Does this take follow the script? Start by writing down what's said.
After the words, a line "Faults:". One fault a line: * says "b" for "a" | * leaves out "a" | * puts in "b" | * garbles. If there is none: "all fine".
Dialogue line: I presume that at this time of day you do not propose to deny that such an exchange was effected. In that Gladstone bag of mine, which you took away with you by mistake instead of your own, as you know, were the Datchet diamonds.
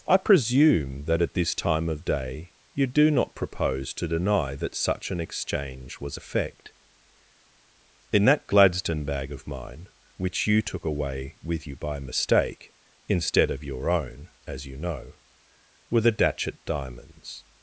I presume that at this time of day you do not propose to deny that such an exchange was effect. In that Gladstone bag of mine, which you took away with you by mistake instead of your own, as you know, were the Datchet diamonds.
Faults:
* says "effect" for "effected"